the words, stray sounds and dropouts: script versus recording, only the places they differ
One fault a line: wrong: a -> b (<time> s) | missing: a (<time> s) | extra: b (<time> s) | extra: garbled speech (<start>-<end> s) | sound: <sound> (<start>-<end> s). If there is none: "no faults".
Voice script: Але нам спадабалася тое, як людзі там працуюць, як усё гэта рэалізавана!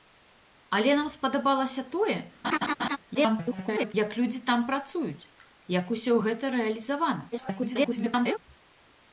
sound: laugh (2.4-3.0 s)
extra: garbled speech (3.1-3.9 s)
extra: garbled speech (7.3-8.4 s)